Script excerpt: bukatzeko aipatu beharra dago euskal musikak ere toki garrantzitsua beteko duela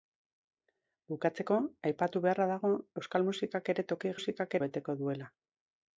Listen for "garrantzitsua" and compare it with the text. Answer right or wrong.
wrong